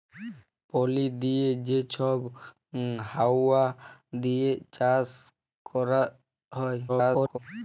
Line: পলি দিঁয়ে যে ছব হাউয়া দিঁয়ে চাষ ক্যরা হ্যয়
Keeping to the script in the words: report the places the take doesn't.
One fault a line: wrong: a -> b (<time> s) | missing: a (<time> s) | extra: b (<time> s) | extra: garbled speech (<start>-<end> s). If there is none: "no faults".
extra: garbled speech (6.9-7.4 s)